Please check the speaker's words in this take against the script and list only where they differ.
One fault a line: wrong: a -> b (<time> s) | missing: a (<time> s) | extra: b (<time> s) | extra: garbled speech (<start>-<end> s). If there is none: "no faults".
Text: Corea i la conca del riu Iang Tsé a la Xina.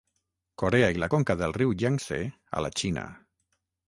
no faults